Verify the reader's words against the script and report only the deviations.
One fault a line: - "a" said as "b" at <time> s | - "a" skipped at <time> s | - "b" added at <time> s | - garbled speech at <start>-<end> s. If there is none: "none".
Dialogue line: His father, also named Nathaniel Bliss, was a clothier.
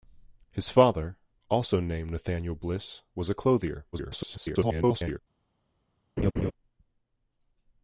- garbled speech at 3.9-5.2 s